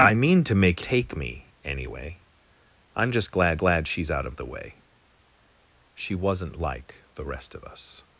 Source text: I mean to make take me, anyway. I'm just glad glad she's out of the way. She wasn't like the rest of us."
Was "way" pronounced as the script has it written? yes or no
yes